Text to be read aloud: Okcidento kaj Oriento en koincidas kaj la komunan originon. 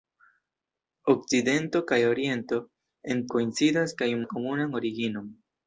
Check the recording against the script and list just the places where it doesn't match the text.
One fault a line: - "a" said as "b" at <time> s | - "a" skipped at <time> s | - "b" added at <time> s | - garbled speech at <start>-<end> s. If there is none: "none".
none